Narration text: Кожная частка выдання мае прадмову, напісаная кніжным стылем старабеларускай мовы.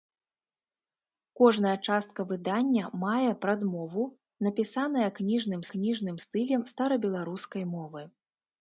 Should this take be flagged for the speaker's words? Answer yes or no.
yes